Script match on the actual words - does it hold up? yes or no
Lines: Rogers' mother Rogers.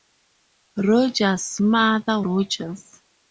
yes